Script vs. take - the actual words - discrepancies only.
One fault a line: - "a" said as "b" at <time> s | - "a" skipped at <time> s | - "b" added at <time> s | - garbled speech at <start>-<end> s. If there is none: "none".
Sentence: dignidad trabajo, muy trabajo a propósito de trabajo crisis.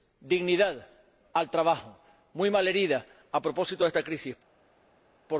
- "al" added at 1.3 s
- "trabajo" said as "malherida" at 2.5 s
- "trabajo" said as "esta" at 3.9 s